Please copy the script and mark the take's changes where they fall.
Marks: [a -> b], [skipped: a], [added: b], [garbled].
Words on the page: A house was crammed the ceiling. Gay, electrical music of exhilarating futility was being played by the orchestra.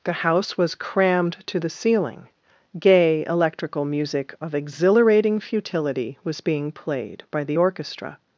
[A -> The] house was crammed [added: to] the ceiling. Gay, electrical music of exhilarating futility was being played by the orchestra.